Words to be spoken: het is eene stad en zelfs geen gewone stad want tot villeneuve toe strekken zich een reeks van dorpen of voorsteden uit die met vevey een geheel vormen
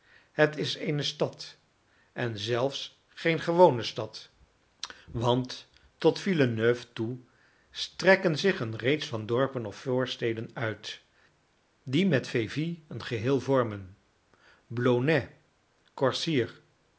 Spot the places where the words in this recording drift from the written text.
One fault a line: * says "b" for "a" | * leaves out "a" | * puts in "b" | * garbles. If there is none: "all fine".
all fine